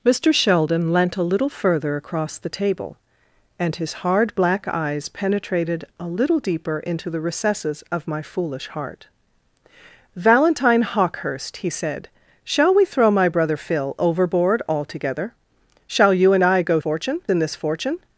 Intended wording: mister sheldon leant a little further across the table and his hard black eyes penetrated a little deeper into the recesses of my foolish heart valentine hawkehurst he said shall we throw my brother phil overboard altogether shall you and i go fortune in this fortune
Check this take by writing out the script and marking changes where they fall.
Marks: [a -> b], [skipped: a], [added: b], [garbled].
mister sheldon leant a little further across the table and his hard black eyes penetrated a little deeper into the recesses of my foolish heart valentine hawkehurst he said shall we throw my brother phil overboard altogether shall you and i go fortune in this fortune